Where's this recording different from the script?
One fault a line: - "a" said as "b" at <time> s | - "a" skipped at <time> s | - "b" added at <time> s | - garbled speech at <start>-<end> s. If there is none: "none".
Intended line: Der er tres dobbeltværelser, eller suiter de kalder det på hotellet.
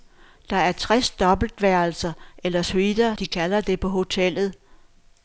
none